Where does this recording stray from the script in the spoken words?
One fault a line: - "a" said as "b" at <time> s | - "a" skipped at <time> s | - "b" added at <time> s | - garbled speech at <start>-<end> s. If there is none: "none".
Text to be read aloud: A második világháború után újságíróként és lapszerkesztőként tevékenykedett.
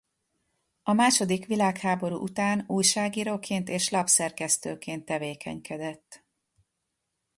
none